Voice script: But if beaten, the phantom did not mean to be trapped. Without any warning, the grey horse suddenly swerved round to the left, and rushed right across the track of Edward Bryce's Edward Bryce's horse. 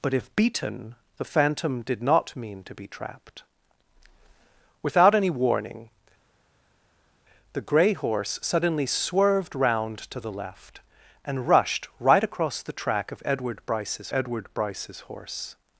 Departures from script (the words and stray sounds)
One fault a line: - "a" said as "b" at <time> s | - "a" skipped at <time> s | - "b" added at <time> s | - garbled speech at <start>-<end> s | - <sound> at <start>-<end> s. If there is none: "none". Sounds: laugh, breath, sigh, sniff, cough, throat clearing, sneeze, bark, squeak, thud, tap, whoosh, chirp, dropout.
none